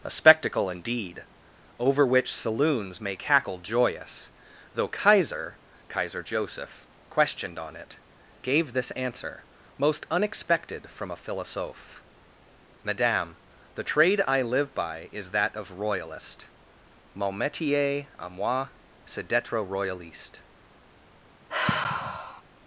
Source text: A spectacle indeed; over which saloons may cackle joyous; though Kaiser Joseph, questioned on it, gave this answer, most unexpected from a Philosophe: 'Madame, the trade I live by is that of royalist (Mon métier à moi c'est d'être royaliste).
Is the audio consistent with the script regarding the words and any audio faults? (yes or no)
no